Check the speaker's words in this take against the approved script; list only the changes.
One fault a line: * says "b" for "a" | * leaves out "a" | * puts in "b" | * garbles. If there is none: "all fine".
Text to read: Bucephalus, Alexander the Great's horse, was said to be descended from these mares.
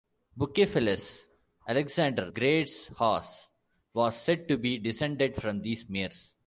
* leaves out "the"